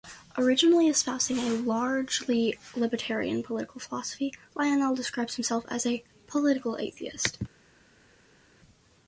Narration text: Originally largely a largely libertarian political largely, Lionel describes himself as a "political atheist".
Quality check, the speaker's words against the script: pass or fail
fail